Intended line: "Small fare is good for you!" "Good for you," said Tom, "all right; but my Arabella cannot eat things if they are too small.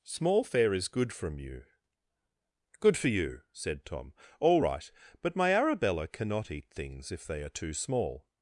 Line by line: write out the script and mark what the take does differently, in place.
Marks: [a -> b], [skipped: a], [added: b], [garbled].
"Small fare is good [for -> from] you!" "Good for you," said Tom, "all right; but my Arabella cannot eat things if they are too small.